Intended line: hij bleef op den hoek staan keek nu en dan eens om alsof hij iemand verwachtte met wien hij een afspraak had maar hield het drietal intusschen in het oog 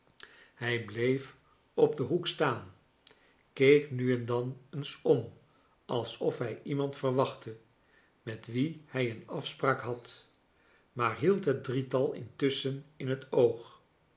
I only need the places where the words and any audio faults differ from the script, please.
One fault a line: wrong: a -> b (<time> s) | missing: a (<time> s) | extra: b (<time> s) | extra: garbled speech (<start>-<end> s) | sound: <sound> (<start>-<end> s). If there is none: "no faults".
no faults